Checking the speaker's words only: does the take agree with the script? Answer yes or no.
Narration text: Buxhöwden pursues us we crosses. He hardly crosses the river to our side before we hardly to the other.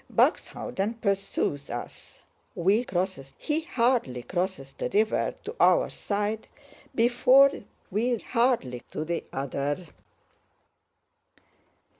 yes